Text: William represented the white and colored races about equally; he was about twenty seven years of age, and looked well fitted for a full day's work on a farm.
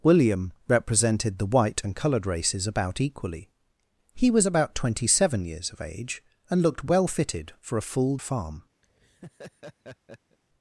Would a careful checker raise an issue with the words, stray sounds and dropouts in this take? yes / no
yes